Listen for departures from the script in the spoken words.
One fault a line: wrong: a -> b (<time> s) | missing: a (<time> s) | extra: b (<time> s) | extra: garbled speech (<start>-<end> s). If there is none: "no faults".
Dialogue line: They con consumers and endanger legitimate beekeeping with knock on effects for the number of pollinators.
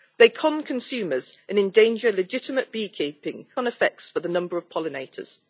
missing: with knock (3.5 s)